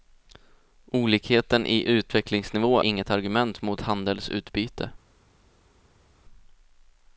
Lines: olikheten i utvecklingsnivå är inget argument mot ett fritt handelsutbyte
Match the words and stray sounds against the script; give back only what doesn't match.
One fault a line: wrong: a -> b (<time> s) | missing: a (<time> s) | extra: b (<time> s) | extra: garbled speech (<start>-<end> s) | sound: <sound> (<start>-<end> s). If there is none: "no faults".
missing: är (2.8 s)
missing: ett fritt (3.8 s)